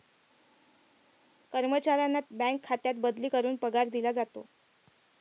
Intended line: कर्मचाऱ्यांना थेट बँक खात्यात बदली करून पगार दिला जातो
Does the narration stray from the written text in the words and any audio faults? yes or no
yes